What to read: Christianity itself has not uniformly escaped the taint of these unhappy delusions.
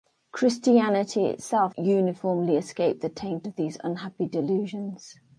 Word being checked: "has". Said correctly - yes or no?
no